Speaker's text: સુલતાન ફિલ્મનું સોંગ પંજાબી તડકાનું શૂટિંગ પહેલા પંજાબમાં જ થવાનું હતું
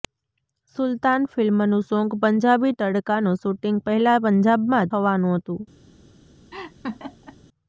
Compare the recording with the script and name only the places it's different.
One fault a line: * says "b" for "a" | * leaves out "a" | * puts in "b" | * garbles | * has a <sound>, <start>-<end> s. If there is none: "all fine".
* leaves out "જ"
* has a laugh, 6.5-7.4 s